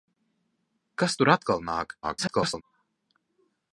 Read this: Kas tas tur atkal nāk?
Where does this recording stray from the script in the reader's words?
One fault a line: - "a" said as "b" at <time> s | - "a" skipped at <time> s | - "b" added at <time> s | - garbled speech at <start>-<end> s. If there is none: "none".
- "tas" skipped at 1.2 s
- garbled speech at 2.0-2.6 s